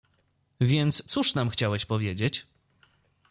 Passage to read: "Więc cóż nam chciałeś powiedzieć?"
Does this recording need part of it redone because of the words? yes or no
no